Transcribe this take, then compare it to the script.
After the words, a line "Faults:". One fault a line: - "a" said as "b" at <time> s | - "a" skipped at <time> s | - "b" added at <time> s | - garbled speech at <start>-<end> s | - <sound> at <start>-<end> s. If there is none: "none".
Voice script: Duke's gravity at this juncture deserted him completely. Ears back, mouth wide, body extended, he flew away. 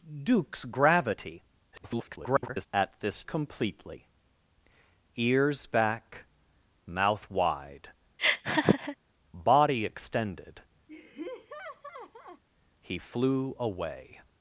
Duke's gravity [garbled] at this completely. Ears back, mouth wide, body extended, he flew away.
Faults:
- garbled speech at 1.7-2.7 s
- "juncture deserted him" skipped at 3.2 s
- laugh at 8.2-9.0 s
- laugh at 10.9-12.4 s